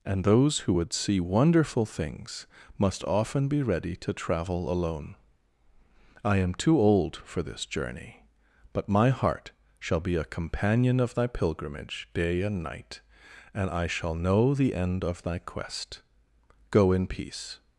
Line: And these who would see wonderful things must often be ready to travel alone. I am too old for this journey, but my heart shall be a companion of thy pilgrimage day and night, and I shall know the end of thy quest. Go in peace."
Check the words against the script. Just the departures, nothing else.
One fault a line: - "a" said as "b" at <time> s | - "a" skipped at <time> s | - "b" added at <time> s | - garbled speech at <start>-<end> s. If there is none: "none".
- "these" said as "those" at 0.2 s